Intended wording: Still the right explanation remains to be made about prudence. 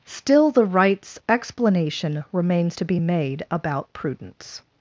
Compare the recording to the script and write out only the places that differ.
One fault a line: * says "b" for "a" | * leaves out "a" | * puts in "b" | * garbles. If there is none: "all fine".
* says "rights" for "right"